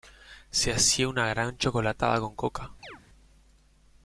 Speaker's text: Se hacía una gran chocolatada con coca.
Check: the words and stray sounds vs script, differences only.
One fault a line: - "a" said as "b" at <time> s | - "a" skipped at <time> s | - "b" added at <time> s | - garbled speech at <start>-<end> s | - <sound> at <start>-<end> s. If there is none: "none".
- chirp at 2.8-3.0 s